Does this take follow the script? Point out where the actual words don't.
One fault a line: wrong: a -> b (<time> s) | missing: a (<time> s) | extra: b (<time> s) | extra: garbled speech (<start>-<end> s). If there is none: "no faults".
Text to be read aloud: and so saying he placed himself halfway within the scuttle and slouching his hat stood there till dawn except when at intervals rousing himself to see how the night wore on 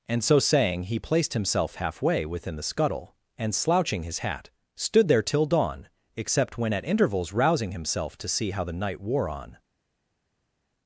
no faults